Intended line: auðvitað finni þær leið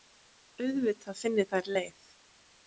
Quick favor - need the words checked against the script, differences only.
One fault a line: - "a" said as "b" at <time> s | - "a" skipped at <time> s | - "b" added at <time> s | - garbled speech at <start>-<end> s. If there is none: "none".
none